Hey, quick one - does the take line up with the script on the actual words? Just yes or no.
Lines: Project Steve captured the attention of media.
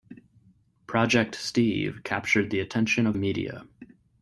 yes